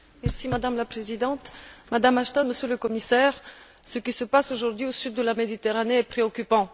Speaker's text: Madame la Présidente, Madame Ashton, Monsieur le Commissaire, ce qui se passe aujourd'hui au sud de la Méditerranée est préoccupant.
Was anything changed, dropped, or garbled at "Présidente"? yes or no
no